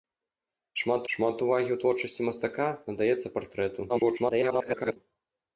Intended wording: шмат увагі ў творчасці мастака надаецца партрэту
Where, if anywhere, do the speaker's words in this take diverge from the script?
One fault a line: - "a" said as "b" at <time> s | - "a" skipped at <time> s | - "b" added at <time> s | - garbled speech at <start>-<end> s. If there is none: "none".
- "шмат" added at 1.1 s
- garbled speech at 3.9-5.0 s